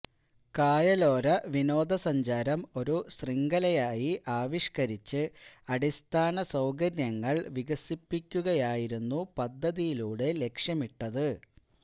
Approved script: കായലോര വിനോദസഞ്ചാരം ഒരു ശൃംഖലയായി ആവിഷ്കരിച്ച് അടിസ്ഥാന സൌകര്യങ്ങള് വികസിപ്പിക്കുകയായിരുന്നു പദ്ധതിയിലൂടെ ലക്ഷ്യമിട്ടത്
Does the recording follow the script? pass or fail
pass